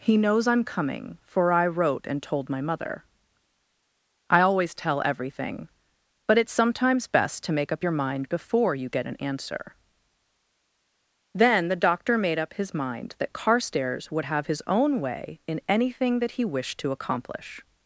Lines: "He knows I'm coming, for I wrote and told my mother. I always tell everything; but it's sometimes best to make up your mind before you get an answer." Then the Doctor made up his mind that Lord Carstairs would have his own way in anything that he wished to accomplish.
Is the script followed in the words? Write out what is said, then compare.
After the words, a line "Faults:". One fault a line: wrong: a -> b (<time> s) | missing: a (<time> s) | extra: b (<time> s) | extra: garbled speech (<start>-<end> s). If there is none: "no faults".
"He knows I'm coming, for I wrote and told my mother. I always tell everything; but it's sometimes best to make up your mind before you get an answer." Then the Doctor made up his mind that Carstairs would have his own way in anything that he wished to accomplish.
Faults:
missing: Lord (13.3 s)